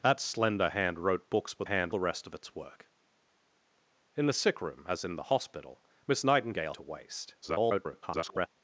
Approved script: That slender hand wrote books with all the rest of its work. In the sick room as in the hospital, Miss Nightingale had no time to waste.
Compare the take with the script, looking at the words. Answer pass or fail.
fail